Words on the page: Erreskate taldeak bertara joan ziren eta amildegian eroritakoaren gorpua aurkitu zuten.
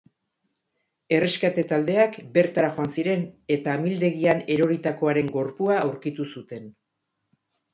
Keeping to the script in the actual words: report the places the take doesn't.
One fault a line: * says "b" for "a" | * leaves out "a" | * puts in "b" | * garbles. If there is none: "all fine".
all fine